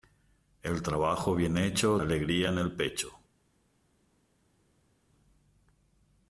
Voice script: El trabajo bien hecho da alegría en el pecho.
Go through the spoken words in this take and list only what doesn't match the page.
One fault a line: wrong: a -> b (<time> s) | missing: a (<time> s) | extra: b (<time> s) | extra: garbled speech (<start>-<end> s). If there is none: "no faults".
missing: da (2.0 s)